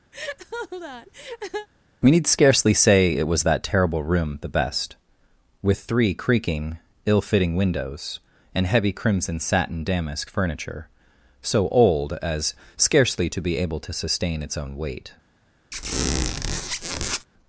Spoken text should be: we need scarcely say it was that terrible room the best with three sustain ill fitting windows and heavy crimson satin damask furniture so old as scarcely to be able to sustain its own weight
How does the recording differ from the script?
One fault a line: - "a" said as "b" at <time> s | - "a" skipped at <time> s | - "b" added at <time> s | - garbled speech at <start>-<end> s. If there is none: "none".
- "sustain" said as "creaking" at 6.1 s